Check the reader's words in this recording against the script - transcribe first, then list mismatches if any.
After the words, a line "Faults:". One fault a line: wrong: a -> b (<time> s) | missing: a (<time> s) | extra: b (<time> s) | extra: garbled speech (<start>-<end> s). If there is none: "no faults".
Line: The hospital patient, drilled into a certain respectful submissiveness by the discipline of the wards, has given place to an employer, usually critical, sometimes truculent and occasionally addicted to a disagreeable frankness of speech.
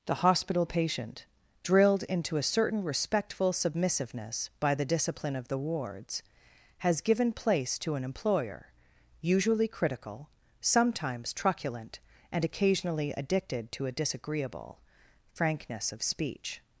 The hospital patient, drilled into a certain respectful submissiveness by the discipline of the wards, has given place to an employer, usually critical, sometimes truculent and occasionally addicted to a disagreeable frankness of speech.
Faults:
no faults